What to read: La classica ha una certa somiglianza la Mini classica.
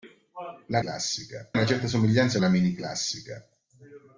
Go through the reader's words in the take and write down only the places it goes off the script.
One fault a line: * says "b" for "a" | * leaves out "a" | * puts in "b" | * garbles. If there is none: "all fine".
all fine